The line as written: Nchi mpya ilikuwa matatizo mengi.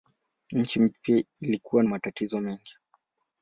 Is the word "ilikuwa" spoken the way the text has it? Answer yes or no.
yes